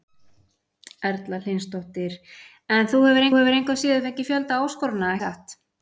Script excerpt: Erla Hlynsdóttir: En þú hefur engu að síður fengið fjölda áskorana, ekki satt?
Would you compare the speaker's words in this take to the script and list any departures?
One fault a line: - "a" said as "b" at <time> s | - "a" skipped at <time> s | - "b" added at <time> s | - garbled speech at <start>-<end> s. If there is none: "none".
- "hefur" added at 3.4 s
- "ekki" skipped at 5.2 s